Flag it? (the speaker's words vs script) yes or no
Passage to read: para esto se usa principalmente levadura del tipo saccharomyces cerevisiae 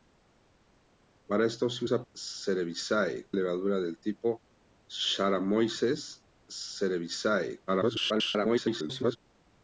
yes